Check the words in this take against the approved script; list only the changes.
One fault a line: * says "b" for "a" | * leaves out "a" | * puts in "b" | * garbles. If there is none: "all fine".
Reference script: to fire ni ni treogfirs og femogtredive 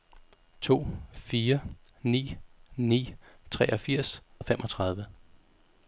all fine